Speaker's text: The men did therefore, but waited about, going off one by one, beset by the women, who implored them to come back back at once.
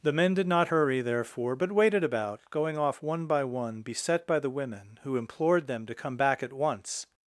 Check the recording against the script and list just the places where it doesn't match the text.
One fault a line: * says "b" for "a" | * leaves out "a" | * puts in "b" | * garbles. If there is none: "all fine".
* puts in "not hurry"
* leaves out "back"